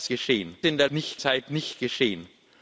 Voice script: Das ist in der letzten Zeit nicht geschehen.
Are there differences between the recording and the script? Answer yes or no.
yes